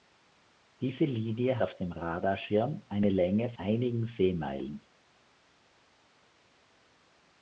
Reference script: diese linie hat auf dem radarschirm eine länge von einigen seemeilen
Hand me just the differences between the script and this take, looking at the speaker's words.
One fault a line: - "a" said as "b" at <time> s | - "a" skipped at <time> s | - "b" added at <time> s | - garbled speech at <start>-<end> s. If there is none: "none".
- "hat" skipped at 1.6 s
- "von" skipped at 3.5 s